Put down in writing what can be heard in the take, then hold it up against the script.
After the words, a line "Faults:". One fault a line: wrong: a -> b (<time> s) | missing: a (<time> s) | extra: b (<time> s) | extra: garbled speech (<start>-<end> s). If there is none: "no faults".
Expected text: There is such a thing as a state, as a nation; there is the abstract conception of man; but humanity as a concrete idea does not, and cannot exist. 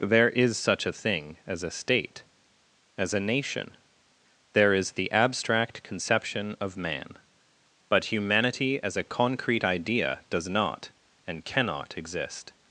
There is such a thing as a state, as a nation; there is the abstract conception of man; but humanity as a concrete idea does not, and cannot exist.
Faults:
no faults